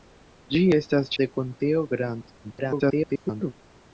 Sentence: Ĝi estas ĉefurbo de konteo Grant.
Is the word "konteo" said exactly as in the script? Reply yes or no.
yes